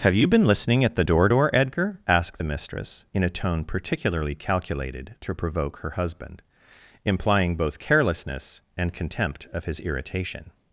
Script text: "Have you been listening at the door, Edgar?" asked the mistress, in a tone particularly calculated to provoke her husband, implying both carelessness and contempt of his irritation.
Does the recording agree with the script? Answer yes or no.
no